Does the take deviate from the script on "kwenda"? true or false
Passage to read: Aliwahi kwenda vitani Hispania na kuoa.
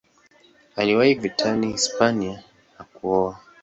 true